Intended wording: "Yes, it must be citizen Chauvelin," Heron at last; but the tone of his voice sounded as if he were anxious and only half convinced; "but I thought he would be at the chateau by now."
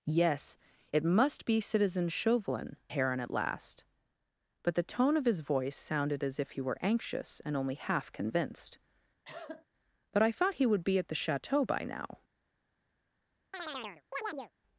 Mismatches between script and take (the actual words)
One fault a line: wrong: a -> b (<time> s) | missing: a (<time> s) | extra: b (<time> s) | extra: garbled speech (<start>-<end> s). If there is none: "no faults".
no faults